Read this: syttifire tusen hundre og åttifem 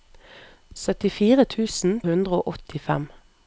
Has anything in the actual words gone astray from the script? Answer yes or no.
no